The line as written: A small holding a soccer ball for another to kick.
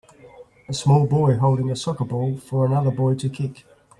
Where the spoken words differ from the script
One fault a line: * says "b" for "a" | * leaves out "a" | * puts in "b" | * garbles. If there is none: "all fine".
* puts in "boy"
* puts in "boy"